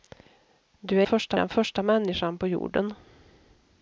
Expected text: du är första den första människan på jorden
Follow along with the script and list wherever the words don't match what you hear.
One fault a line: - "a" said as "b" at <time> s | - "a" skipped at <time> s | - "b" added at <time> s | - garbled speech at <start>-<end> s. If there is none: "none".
none